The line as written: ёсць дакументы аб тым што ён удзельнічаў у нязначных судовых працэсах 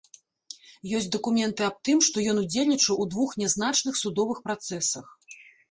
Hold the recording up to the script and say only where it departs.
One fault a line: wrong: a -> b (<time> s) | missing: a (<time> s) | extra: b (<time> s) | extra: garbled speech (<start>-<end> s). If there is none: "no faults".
extra: двух (3.2 s)